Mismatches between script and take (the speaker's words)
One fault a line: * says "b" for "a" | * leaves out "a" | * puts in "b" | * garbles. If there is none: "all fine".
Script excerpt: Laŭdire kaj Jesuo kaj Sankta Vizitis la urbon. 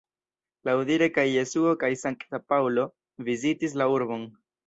* puts in "Paŭlo"